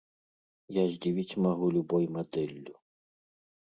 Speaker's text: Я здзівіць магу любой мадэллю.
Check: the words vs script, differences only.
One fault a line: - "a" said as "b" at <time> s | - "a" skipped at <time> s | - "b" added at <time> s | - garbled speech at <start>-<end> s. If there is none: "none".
none